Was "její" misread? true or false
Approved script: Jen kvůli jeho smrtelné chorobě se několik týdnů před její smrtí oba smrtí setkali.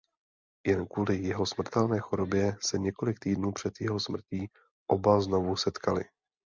true